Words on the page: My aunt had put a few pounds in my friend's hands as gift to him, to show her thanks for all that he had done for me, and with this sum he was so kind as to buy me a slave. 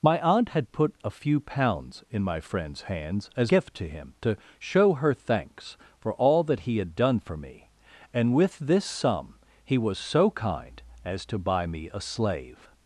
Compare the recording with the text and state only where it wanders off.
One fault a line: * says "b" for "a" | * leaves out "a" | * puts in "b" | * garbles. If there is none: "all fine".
all fine